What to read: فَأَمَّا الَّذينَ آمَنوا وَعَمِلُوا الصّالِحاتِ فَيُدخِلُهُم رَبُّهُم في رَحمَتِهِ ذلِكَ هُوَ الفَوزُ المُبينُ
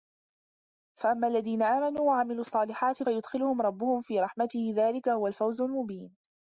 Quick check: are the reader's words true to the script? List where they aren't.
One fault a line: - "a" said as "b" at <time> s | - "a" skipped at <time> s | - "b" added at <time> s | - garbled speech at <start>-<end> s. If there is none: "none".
none